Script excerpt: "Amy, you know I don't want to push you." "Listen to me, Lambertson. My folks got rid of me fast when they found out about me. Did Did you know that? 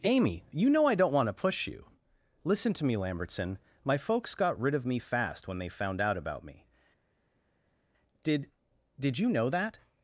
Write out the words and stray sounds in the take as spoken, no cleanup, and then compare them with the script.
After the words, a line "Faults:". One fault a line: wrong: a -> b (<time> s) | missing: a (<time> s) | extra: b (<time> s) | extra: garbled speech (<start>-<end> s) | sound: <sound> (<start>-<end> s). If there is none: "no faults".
"Amy, you know I don't want to push you." "Listen to me, Lambertson. My folks got rid of me fast when they found out about me. Did Did you know that?
Faults:
no faults